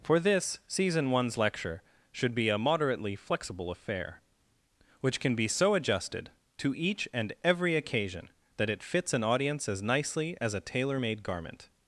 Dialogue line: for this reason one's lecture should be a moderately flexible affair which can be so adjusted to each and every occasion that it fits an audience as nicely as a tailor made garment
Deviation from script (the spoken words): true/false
true